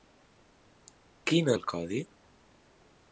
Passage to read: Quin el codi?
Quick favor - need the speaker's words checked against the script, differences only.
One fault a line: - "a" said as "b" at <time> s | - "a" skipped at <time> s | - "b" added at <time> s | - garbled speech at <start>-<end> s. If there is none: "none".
none